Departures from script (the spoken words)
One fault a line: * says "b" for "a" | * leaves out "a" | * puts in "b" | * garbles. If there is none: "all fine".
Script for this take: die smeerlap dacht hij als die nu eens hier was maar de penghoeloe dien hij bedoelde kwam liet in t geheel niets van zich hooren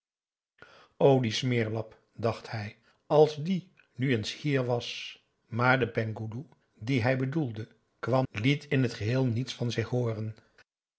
all fine